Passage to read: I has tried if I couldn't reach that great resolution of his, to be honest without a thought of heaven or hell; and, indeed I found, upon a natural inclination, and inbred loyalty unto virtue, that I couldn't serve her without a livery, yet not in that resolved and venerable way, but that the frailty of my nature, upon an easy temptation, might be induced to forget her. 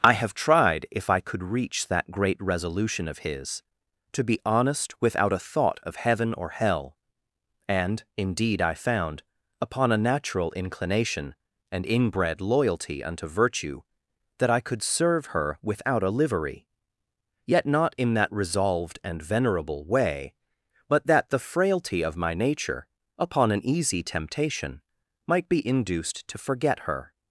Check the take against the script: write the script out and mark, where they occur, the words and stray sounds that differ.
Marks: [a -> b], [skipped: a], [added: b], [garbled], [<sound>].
I [has -> have] tried if I [couldn't -> could] reach that great resolution of his, to be honest without a thought of heaven or hell; and, indeed I found, upon a natural inclination, and inbred loyalty unto virtue, that I [couldn't -> could] serve her without a livery, yet not in that resolved and venerable way, but that the frailty of my nature, upon an easy temptation, might be induced to forget her.